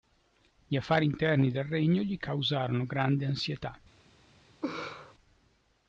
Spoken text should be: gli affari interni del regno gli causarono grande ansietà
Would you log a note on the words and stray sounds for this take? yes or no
yes